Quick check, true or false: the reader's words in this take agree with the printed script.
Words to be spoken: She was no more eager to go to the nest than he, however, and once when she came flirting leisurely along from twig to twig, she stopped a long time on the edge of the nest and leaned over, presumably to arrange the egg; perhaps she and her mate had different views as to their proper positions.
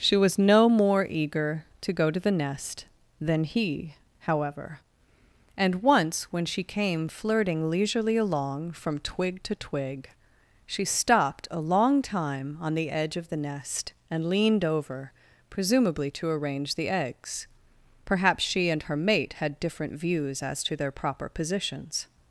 false